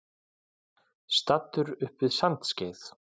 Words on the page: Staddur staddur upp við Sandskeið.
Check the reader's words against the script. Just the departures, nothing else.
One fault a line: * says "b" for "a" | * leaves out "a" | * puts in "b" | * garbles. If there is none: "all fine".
* leaves out "staddur"